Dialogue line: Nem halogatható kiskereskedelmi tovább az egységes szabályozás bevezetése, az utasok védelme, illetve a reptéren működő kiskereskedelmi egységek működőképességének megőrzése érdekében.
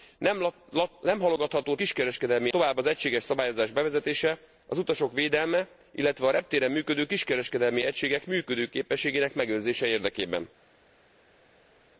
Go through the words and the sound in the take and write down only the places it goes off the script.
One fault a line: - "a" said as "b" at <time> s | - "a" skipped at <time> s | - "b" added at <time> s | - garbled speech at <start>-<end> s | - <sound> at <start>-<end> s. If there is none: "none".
none